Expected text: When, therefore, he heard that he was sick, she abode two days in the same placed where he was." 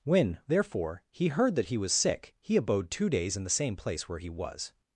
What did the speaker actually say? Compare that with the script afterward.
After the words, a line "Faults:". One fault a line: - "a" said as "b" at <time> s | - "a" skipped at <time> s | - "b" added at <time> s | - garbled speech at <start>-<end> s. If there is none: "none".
When, therefore, he heard that he was sick, he abode two days in the same place where he was."
Faults:
- "she" said as "he" at 2.4 s
- "placed" said as "place" at 3.8 s